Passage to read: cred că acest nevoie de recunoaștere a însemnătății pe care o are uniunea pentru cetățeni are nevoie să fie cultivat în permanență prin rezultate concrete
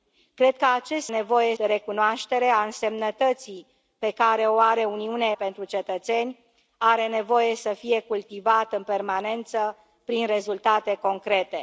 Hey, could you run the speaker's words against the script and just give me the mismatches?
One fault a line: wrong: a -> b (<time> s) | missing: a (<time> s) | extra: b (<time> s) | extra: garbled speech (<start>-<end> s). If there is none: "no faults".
no faults